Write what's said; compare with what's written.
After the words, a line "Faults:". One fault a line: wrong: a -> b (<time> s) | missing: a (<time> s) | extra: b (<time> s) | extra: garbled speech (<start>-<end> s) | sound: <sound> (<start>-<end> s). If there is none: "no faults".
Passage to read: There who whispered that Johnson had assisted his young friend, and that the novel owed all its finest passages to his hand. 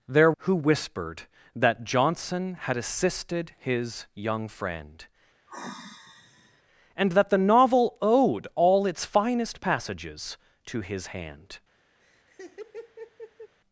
There who whispered that Johnson had assisted his young friend, and that the novel owed all its finest passages to his hand.
Faults:
sound: sigh (5.5-6.6 s)
sound: laugh (12.0-13.5 s)